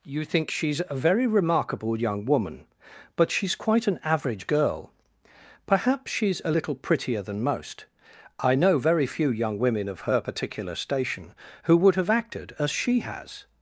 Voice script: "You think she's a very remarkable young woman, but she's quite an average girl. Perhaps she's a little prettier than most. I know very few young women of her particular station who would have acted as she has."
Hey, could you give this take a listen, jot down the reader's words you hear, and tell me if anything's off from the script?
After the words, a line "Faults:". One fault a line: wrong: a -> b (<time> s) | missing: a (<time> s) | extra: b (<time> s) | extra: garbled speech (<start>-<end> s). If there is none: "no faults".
"You think she's a very remarkable young woman, but she's quite an average girl. Perhaps she's a little prettier than most. I know very few young women of her particular station who would have acted as she has."
Faults:
no faults